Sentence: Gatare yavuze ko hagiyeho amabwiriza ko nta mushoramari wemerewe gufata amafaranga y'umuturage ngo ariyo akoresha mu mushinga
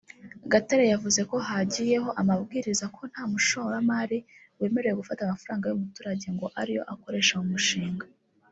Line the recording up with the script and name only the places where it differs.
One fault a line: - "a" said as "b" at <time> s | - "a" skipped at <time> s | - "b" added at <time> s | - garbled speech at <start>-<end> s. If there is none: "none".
none